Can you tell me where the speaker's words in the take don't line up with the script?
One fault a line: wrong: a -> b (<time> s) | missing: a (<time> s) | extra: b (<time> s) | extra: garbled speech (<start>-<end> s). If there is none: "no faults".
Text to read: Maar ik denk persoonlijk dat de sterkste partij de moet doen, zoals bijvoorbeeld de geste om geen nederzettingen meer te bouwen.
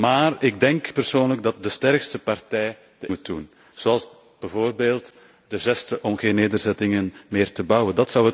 no faults